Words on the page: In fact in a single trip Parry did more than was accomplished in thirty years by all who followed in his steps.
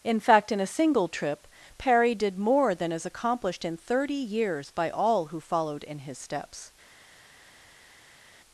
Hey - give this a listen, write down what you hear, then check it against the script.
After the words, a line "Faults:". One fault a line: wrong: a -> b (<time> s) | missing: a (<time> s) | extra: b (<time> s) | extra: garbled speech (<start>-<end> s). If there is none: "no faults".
In fact in a single trip Parry did more than is accomplished in thirty years by all who followed in his steps.
Faults:
wrong: was -> is (2.9 s)